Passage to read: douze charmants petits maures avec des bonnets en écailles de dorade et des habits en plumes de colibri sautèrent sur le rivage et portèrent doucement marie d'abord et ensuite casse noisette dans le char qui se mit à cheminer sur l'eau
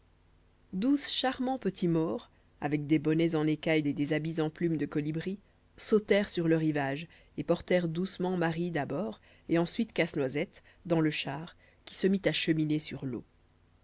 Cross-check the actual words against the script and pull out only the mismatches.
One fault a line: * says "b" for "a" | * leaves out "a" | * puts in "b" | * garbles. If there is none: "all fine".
* leaves out "de dorade"